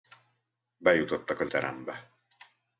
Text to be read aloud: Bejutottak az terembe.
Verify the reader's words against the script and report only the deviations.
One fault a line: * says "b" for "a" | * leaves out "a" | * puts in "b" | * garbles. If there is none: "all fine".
all fine